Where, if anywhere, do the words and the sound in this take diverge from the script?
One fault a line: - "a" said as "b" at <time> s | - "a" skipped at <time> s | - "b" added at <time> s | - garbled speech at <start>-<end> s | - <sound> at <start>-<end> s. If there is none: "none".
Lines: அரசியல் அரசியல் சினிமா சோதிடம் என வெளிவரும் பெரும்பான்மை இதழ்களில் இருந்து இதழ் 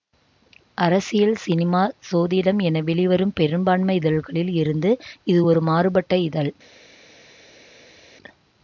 - "அரசியல்" skipped at 1.4 s
- "இது ஒரு மாறுபட்ட" added at 5.2 s